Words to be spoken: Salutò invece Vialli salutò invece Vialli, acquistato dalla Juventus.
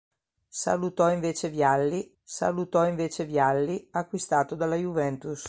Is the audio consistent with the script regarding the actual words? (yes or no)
yes